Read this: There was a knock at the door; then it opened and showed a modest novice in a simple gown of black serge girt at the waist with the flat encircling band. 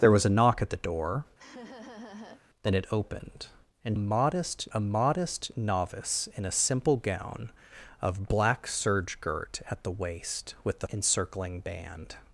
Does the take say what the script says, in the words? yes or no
no